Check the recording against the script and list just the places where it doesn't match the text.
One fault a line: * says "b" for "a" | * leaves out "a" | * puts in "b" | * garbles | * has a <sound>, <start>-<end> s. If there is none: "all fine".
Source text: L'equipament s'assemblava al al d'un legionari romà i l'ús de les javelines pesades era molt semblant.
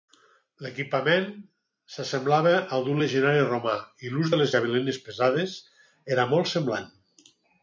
* leaves out "al"